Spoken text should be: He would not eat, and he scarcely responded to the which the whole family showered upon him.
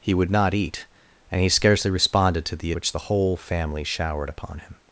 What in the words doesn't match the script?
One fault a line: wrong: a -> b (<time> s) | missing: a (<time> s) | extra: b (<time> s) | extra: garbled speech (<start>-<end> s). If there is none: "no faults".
no faults